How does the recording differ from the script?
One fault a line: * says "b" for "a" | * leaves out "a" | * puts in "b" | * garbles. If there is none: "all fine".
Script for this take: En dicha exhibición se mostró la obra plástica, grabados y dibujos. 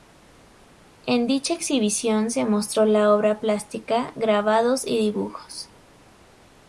all fine